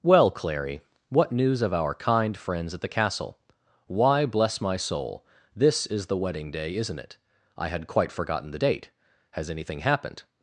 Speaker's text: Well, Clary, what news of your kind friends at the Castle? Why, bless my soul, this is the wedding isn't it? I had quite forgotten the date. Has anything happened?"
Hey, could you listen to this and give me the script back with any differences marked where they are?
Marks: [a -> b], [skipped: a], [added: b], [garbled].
Well, Clary, what news of [your -> our] kind friends at the Castle? Why, bless my soul, this is the wedding [added: day] isn't it? I had quite forgotten the date. Has anything happened?"